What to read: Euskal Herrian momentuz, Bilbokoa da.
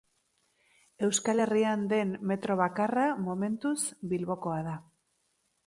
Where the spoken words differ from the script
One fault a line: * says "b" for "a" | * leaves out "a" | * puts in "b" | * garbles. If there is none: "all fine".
* puts in "den metro bakarra"